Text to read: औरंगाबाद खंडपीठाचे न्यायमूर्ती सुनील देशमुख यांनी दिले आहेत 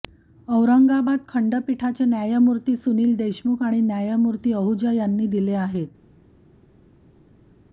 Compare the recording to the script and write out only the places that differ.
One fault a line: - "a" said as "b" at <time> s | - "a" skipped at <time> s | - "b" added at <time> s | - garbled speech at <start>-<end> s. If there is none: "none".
- "आणि न्यायमूर्ती आहुजा" added at 3.6 s